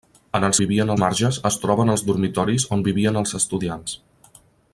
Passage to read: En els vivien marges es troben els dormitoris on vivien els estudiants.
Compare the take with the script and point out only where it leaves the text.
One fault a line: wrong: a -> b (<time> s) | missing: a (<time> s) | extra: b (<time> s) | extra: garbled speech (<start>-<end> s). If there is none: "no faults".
no faults